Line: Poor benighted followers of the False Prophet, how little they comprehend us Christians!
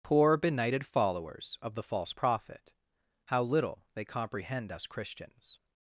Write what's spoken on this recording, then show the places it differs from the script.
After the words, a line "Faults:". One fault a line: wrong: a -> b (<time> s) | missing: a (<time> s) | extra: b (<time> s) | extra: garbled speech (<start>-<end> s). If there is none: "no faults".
Poor benighted followers of the False Prophet, how little they comprehend us Christians!
Faults:
no faults